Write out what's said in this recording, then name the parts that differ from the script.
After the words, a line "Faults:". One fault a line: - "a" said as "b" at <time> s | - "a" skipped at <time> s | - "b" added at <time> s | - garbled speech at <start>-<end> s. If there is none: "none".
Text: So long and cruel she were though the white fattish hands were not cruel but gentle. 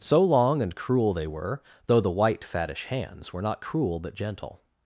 So long and cruel they were though the white fattish hands were not cruel but gentle.
Faults:
- "she" said as "they" at 1.1 s